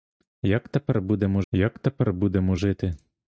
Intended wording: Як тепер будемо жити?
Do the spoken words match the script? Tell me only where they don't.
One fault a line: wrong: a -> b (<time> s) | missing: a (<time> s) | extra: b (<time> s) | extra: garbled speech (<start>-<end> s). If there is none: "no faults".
extra: як тепер будемо (1.5 s)